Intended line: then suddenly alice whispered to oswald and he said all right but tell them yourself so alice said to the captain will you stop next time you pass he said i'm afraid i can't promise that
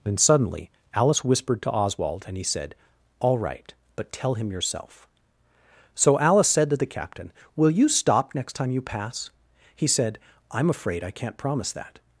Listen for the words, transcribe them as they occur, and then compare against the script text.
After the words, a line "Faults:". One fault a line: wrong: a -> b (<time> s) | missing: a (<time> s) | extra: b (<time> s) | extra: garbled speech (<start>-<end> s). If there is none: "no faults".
then suddenly alice whispered to oswald and he said all right but tell him yourself so alice said to the captain will you stop next time you pass he said i'm afraid i can't promise that
Faults:
wrong: them -> him (4.3 s)